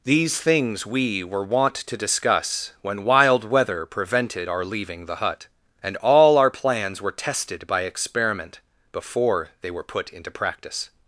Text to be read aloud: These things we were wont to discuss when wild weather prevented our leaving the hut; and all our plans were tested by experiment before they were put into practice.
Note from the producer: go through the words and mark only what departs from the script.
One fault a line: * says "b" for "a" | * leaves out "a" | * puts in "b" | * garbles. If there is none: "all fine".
all fine